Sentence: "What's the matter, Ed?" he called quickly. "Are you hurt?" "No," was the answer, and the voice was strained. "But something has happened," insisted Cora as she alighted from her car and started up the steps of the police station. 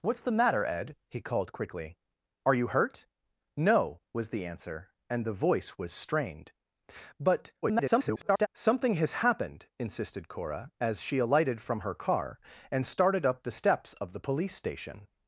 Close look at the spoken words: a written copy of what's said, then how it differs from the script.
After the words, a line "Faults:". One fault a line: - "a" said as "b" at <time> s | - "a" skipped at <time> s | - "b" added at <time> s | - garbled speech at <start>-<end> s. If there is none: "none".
"What's the matter, Ed?" he called quickly. "Are you hurt?" "No," was the answer, and the voice was strained. "But [garbled] something has happened," insisted Cora as she alighted from her car and started up the steps of the police station.
Faults:
- garbled speech at 7.6-8.5 s